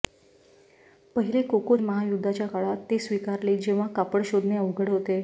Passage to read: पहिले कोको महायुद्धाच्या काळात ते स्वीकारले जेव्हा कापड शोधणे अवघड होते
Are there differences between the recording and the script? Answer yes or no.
no